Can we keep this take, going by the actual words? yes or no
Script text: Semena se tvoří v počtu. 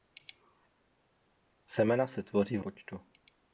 yes